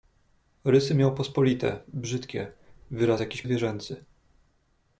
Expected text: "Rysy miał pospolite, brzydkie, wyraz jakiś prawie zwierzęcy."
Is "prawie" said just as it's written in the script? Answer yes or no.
no